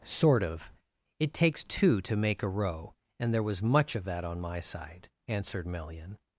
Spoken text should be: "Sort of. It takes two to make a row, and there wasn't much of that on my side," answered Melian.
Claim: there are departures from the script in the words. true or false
true